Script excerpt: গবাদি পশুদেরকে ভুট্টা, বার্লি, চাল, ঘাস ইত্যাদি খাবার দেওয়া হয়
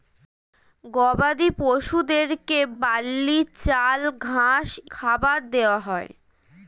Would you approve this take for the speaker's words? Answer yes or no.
no